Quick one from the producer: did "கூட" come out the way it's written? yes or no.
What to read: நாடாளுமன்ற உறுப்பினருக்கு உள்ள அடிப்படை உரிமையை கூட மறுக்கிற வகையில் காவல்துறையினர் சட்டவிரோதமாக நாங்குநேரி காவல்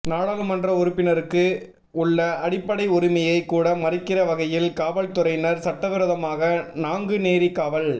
yes